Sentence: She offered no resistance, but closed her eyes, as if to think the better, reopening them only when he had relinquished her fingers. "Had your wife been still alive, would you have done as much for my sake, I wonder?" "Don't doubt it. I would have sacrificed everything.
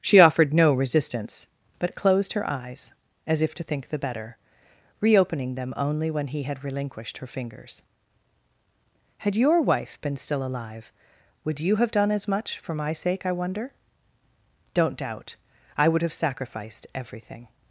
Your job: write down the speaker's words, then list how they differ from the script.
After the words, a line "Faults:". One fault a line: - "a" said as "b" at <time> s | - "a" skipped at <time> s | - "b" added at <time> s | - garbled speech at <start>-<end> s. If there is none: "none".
She offered no resistance, but closed her eyes, as if to think the better, reopening them only when he had relinquished her fingers. "Had your wife been still alive, would you have done as much for my sake, I wonder?" "Don't doubt. I would have sacrificed everything.
Faults:
- "it" skipped at 15.3 s